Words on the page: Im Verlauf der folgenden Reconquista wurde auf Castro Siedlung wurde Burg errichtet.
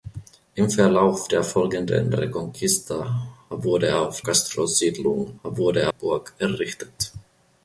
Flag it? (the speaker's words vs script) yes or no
no